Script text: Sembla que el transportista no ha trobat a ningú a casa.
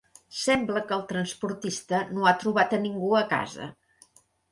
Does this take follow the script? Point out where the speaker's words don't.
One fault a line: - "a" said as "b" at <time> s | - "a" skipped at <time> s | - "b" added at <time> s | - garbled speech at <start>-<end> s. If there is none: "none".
none